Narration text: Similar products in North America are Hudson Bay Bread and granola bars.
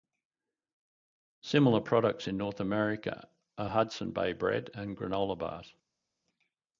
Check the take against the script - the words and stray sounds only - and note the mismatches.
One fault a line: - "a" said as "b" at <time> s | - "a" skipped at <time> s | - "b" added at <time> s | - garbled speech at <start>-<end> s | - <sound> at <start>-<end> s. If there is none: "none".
none